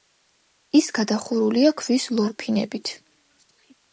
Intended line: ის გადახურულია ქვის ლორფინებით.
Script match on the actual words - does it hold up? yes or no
yes